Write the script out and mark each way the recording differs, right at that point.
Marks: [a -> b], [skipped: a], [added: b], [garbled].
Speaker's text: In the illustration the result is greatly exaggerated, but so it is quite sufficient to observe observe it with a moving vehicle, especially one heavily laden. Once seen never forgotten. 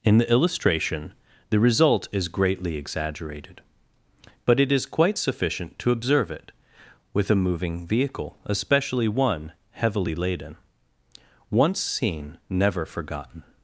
In the illustration the result is greatly exaggerated, but [skipped: so] it is quite sufficient to observe [skipped: observe] it with a moving vehicle, especially one heavily laden. Once seen never forgotten.